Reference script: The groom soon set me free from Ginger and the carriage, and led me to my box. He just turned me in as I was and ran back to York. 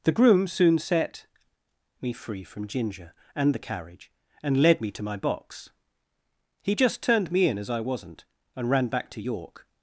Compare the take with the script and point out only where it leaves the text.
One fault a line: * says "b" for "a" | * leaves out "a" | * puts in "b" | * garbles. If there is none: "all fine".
* says "wasn't" for "was"